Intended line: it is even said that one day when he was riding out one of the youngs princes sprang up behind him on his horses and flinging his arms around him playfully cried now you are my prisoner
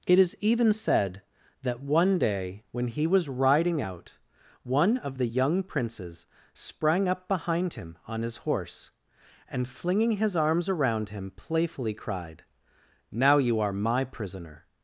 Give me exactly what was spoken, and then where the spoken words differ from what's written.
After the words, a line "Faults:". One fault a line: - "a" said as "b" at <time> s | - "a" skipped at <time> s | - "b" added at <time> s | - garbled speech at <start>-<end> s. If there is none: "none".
it is even said that one day when he was riding out one of the young princes sprang up behind him on his horse and flinging his arms around him playfully cried now you are my prisoner
Faults:
- "youngs" said as "young" at 5.2 s
- "horses" said as "horse" at 8.4 s